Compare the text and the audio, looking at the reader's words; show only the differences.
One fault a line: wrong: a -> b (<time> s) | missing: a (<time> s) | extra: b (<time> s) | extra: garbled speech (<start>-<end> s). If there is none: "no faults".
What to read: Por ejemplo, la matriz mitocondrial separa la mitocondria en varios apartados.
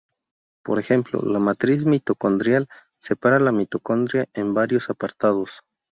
no faults